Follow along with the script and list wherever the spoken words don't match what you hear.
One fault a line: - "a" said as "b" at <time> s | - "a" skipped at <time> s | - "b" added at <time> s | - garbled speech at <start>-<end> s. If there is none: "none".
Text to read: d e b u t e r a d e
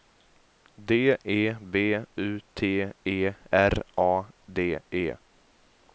none